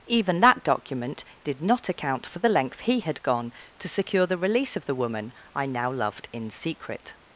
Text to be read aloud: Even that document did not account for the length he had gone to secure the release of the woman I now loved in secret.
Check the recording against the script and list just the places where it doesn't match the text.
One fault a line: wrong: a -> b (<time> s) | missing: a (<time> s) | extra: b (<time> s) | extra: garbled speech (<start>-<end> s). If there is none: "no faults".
no faults